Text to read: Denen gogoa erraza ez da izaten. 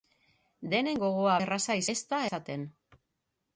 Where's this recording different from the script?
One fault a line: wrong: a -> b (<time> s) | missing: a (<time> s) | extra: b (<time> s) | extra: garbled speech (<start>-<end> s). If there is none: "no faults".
no faults